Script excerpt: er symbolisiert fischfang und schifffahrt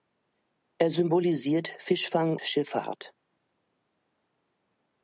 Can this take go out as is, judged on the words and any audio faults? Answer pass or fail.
fail